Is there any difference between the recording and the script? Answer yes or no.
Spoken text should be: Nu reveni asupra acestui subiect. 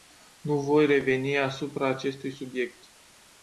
yes